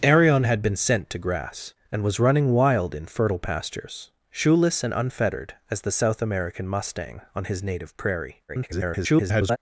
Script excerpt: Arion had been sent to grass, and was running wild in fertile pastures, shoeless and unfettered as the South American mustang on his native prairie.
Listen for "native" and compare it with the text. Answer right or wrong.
right